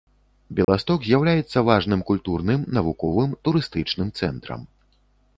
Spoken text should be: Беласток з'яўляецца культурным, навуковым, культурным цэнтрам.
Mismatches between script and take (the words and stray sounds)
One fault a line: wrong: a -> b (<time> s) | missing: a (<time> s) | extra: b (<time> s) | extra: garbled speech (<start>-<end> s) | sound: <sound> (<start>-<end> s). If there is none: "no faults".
sound: dropout (0.6-0.7 s)
extra: важным (1.7 s)
wrong: культурным -> турыстычным (3.5 s)